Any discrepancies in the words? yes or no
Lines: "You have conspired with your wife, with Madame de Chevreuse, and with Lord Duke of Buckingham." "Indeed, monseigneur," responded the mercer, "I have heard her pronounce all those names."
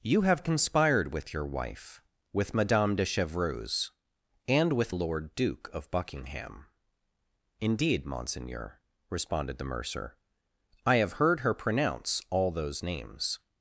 no